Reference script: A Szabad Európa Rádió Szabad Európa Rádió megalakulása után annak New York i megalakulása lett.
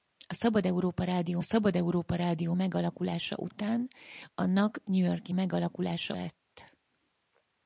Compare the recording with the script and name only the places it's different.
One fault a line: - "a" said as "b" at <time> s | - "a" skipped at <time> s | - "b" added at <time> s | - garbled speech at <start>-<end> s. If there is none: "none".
none